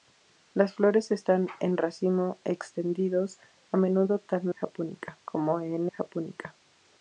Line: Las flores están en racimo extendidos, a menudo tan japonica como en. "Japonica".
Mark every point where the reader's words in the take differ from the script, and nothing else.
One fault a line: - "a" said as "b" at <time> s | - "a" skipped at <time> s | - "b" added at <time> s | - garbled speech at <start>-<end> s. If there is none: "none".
none